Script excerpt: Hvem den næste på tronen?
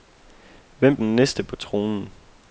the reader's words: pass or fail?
pass